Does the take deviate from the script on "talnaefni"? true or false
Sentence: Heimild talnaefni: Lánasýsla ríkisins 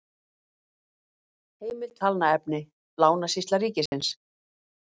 false